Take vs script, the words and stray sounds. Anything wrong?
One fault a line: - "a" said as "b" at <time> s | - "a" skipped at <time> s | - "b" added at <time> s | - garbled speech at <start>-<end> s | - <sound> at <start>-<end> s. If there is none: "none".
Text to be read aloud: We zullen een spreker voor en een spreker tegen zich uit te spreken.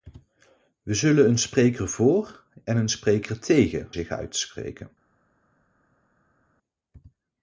none